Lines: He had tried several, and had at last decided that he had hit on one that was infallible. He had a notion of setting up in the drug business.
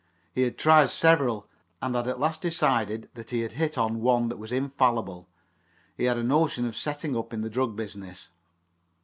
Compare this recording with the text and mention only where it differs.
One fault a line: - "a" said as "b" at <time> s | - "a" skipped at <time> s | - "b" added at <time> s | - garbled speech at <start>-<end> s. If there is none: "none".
none